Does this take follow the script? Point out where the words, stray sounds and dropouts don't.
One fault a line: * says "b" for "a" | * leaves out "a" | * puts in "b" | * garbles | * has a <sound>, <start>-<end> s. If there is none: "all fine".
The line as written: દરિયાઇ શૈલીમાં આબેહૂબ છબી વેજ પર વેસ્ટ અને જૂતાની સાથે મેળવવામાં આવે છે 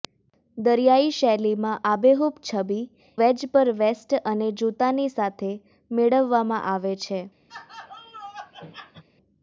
* has a laugh, 7.5-9.0 s